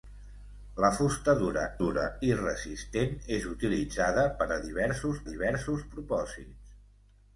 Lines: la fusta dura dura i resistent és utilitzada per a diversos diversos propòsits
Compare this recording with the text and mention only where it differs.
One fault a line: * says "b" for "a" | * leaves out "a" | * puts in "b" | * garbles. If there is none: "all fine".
all fine